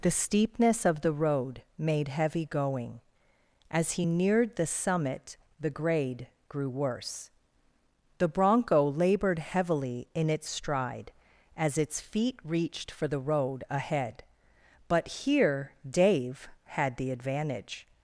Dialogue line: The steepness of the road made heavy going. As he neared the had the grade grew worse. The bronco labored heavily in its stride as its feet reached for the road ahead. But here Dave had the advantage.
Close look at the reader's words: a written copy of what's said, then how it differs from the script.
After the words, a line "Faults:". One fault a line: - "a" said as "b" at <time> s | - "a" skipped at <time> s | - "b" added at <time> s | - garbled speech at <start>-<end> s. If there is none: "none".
The steepness of the road made heavy going. As he neared the summit the grade grew worse. The bronco labored heavily in its stride as its feet reached for the road ahead. But here Dave had the advantage.
Faults:
- "had" said as "summit" at 4.7 s